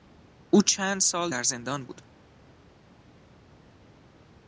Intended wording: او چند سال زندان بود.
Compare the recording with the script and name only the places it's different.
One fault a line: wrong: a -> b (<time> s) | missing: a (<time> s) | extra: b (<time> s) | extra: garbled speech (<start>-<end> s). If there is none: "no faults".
extra: در (1.3 s)